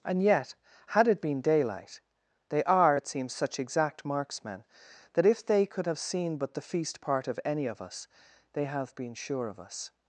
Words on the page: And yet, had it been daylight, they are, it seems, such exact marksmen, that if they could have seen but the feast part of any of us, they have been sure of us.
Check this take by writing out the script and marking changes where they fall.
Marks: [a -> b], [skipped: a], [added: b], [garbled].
And yet, had it been daylight, they are, it seems, such exact marksmen, that if they could have seen but the feast part of any of us, they have been sure of us.